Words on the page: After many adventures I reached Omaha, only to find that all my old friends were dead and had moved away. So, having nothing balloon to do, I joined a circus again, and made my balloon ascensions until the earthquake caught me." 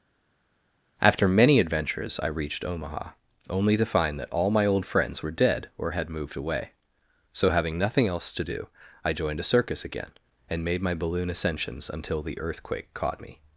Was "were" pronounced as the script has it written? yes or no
yes